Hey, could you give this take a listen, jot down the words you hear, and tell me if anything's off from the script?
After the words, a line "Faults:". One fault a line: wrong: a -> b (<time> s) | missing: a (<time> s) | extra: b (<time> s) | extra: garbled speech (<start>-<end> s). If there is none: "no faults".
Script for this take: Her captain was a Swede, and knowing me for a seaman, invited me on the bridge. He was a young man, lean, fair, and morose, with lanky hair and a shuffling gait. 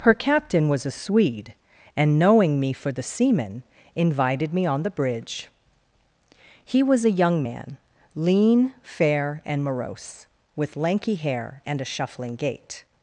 Her captain was a Swede, and knowing me for the seaman, invited me on the bridge. He was a young man, lean, fair, and morose, with lanky hair and a shuffling gait.
Faults:
wrong: a -> the (2.9 s)